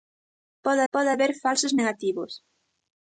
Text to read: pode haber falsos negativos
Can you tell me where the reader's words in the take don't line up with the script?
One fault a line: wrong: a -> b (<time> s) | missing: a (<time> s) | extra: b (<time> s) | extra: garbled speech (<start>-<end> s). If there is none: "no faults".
extra: pode (0.9 s)